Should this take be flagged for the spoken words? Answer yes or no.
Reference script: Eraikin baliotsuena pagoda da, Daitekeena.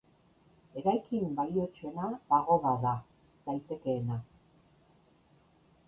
no